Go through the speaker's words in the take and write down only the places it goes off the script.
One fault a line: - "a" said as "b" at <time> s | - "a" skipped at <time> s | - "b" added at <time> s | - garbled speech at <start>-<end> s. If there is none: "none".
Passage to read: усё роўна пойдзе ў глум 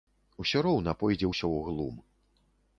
- "ўсё" added at 1.3 s